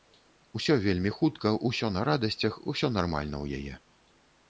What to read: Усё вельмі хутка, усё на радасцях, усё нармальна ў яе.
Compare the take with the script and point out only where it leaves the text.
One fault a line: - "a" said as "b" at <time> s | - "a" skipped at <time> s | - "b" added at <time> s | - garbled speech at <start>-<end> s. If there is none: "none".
none